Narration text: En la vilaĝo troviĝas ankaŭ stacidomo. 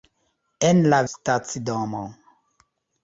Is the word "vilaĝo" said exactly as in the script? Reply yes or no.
no